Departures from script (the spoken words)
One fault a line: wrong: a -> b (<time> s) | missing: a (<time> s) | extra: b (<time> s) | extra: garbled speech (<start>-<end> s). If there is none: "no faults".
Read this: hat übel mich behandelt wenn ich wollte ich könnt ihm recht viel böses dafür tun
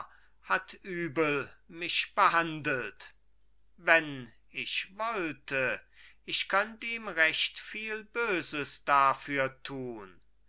no faults